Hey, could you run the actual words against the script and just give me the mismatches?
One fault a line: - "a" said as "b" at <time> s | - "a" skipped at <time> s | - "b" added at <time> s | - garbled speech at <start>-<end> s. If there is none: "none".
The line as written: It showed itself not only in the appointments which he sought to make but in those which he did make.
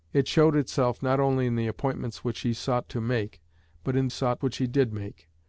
- "those" said as "sought" at 4.1 s